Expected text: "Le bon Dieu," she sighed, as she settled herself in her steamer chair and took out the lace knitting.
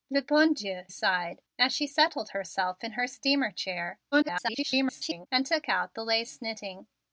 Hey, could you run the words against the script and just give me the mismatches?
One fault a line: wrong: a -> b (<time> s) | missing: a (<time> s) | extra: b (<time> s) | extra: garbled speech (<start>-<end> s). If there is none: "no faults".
missing: she (0.8 s)
extra: garbled speech (4.1-5.3 s)